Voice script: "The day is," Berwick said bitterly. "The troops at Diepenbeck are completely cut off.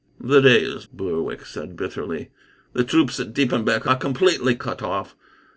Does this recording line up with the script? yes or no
yes